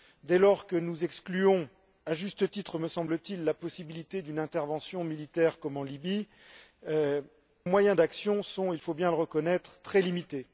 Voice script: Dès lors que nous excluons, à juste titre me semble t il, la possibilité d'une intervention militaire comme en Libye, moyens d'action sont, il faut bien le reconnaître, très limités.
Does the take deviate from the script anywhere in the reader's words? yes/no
no